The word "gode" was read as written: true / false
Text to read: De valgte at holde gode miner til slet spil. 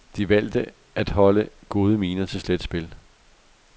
true